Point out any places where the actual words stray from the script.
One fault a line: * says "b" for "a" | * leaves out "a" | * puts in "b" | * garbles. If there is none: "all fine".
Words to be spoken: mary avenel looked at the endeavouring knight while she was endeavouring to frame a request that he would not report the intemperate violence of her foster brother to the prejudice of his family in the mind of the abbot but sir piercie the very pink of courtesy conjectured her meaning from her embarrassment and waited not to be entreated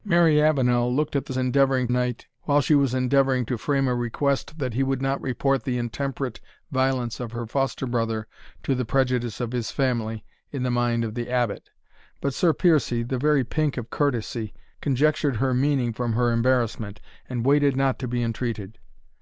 all fine